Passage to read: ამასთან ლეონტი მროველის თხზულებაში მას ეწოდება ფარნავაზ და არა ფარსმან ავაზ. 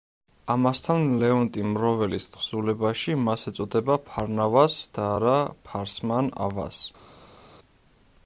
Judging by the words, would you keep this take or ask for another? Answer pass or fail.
pass